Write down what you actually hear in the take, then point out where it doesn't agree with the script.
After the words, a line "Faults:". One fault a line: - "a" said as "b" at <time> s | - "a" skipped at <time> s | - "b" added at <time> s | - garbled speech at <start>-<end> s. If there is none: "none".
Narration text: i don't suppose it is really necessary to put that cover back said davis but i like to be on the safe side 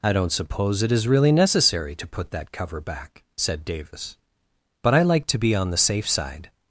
i don't suppose it is really necessary to put that cover back said davis but i like to be on the safe side
Faults:
none